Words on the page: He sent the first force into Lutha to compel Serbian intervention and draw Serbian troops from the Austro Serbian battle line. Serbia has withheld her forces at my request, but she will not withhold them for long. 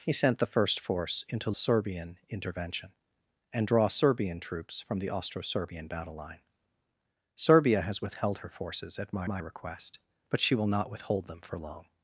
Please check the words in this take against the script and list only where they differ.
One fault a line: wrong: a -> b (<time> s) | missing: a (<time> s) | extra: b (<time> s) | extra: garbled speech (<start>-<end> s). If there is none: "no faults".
missing: Lutha to compel (1.5 s)
extra: my (9.3 s)